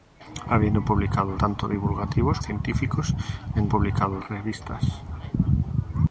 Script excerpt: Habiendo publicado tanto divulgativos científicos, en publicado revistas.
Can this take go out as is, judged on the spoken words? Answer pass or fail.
pass